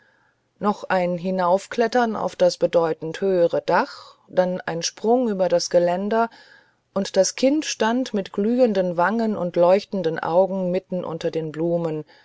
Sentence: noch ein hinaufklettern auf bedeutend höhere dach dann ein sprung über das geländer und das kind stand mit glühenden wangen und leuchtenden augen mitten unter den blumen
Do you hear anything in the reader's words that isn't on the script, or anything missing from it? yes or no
yes